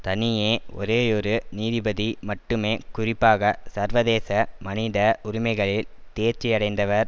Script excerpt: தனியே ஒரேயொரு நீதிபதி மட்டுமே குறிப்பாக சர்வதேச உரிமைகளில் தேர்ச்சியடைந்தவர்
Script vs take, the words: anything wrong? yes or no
yes